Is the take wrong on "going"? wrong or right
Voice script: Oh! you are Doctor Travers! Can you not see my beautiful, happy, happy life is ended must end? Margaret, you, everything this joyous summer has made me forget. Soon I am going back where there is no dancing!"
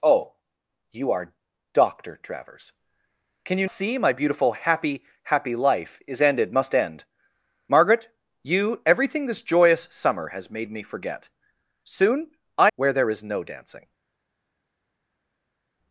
wrong